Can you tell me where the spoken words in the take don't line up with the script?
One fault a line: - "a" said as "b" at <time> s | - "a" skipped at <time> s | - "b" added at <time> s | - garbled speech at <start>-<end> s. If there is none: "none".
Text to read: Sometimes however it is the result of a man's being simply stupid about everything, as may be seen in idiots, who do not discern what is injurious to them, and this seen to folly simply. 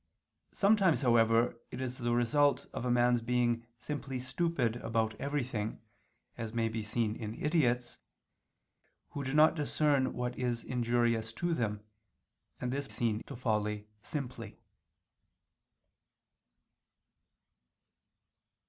none